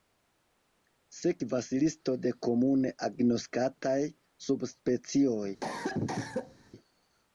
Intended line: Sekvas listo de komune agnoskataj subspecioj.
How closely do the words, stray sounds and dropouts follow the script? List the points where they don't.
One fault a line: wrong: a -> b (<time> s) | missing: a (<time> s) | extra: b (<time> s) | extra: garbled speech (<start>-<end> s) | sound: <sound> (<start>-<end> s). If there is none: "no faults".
sound: cough (5.6-6.7 s)